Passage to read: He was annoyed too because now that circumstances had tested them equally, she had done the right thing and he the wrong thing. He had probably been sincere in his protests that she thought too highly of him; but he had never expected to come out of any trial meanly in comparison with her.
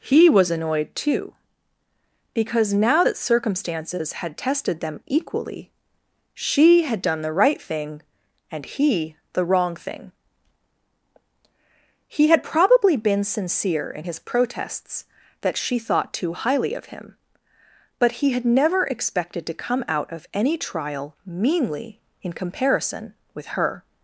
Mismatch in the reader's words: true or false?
false